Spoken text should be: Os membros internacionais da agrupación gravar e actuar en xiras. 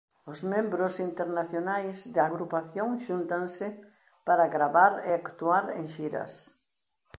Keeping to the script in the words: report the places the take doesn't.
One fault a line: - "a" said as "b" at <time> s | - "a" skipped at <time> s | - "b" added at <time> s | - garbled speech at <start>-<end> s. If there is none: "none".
- "xúntanse para" added at 3.0 s